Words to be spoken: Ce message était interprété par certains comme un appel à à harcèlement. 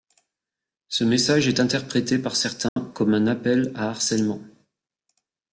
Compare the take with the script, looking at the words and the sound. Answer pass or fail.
fail